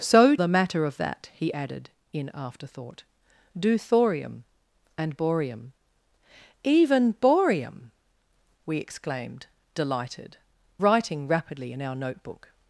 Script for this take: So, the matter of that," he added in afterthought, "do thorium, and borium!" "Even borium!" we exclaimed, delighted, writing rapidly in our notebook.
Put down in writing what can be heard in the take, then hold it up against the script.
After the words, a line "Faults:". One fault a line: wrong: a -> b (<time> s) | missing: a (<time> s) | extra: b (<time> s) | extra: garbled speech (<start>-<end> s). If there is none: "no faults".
So, the matter of that," he added in afterthought, "do thorium, and borium!" "Even borium!" we exclaimed, delighted, writing rapidly in our notebook.
Faults:
no faults